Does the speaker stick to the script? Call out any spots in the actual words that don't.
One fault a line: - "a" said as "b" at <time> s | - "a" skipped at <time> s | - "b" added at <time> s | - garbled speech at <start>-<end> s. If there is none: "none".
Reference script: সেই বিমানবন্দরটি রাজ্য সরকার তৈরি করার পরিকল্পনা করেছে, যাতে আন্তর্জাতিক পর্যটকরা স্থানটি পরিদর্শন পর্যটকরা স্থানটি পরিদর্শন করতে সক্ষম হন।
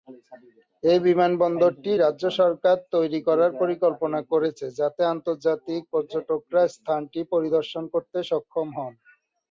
- "সেই" said as "এই" at 0.8 s
- "পর্যটকরা স্থানটি পরিদর্শন" skipped at 7.8 s